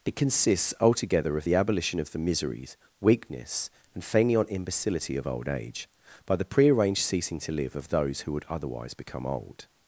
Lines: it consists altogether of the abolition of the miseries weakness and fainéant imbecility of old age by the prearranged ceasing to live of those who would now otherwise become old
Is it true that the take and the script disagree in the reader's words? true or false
true